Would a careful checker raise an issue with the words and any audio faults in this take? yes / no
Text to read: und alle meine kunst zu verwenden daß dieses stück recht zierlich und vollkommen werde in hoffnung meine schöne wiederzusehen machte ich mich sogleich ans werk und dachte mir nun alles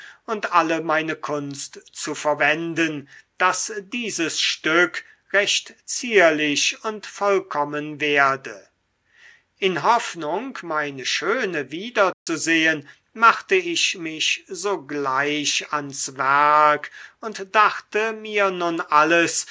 yes